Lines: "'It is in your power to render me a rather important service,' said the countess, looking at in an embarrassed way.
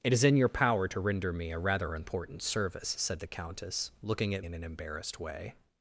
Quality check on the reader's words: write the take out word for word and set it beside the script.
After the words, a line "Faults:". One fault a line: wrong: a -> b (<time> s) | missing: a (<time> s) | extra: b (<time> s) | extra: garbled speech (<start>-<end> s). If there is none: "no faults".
"'It is in your power to render me a rather important service,' said the countess, looking at in an embarrassed way.
Faults:
no faults